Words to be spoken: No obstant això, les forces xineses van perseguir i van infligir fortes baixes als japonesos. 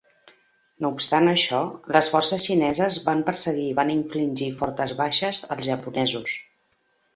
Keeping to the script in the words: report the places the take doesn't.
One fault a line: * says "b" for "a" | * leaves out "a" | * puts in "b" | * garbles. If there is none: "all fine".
all fine